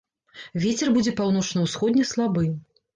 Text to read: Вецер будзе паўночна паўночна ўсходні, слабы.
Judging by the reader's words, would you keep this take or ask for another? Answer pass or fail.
fail